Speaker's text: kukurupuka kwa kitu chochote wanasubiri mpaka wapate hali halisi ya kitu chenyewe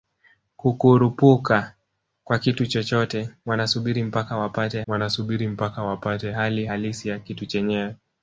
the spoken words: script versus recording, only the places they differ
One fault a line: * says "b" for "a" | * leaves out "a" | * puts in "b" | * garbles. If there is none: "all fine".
* puts in "wanasubiri mpaka wapate"